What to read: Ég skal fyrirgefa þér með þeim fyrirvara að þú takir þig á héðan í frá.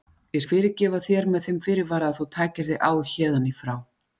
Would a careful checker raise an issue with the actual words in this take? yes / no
yes